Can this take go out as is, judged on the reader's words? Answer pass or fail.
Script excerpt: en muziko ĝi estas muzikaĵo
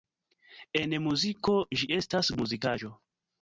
pass